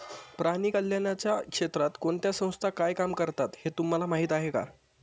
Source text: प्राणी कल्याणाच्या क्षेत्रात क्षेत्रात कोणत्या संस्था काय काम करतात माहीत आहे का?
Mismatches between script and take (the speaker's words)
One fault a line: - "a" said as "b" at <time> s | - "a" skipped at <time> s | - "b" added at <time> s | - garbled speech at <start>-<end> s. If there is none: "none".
- "क्षेत्रात" skipped at 1.9 s
- "हे तुम्हाला" added at 3.6 s